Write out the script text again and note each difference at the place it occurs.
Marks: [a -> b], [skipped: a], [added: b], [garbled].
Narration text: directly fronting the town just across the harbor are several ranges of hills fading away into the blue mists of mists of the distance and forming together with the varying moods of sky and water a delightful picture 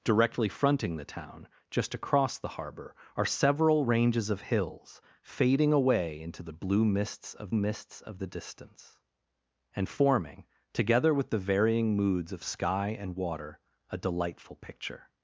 directly fronting the town just across the harbor are several ranges of hills fading away into the blue mists of mists of the distance and forming together with the varying moods of sky and water a delightful picture